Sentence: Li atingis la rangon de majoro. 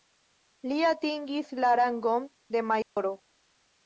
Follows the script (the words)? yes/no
yes